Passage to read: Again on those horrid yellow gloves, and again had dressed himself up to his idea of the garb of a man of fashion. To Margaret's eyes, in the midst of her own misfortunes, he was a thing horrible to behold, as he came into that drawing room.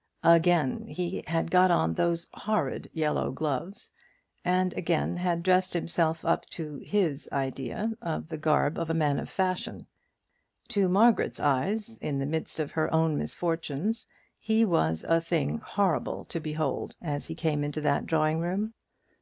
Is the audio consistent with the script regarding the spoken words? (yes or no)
no